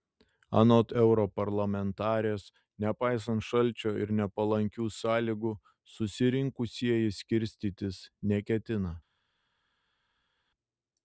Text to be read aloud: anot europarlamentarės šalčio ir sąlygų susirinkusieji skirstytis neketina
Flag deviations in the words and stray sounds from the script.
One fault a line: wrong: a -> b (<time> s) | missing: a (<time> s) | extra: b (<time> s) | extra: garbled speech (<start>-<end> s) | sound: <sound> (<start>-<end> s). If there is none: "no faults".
extra: nepaisant (2.8 s)
extra: nepalankių (4.2 s)